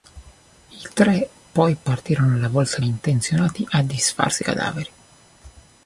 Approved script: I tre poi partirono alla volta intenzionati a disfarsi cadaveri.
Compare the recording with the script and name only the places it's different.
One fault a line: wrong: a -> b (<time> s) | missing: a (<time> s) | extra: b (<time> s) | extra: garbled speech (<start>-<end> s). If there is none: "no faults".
no faults